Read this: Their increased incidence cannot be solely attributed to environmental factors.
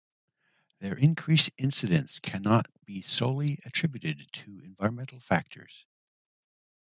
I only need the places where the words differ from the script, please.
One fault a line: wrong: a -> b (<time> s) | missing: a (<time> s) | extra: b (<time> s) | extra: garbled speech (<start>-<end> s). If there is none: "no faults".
no faults